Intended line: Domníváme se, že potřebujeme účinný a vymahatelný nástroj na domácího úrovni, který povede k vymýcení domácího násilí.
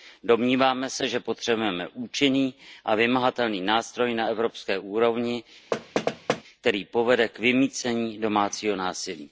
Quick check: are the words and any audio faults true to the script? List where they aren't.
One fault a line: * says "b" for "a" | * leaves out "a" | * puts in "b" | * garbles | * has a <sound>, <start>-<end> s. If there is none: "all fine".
* says "evropské" for "domácího"
* has a thud, 5.7-6.4 s